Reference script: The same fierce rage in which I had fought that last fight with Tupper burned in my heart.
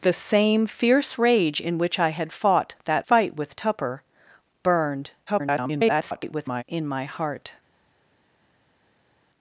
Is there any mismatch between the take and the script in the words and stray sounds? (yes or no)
yes